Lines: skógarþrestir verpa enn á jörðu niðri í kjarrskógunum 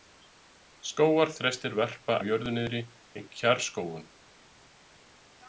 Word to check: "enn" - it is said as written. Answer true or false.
false